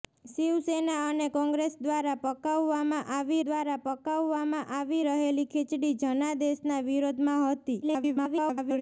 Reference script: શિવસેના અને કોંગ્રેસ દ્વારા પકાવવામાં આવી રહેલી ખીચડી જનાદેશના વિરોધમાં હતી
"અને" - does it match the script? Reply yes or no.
yes